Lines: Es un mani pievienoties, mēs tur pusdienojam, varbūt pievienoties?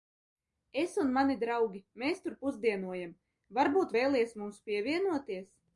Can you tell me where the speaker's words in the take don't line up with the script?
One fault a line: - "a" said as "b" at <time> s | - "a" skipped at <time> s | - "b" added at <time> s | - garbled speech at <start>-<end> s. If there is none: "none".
- "pievienoties" said as "draugi" at 1.4 s
- "vēlies mums" added at 4.0 s